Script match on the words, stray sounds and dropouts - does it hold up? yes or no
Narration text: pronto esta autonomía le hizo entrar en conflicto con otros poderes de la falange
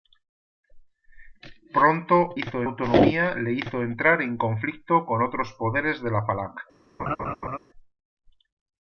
no